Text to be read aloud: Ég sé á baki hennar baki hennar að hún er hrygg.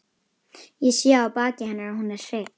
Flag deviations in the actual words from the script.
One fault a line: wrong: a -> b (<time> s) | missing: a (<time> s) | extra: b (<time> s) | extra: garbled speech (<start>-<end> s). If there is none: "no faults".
missing: baki hennar (1.9 s)